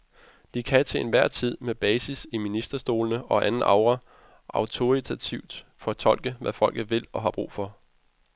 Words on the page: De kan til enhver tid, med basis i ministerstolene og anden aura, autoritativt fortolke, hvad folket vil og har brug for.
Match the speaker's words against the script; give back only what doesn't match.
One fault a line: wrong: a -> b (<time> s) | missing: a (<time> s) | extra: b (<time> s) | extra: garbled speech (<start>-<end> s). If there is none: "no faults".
no faults